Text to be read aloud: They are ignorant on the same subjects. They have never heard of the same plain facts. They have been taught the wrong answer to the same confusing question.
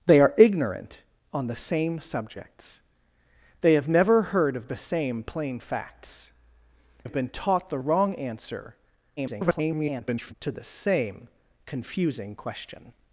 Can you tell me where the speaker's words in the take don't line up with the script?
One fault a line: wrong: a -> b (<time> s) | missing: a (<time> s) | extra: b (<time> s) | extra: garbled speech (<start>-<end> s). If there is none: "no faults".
missing: They (6.3 s)
extra: garbled speech (9.2-10.3 s)